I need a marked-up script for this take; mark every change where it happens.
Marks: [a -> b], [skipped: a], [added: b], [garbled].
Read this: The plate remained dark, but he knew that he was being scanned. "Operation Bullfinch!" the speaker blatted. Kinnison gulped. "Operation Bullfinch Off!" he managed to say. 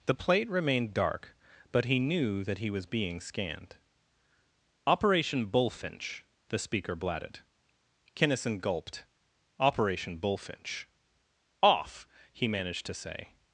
The plate remained dark, but he knew that he was being scanned. "Operation Bullfinch!" the speaker blatted. Kinnison gulped. "Operation Bullfinch Off!" he managed to say.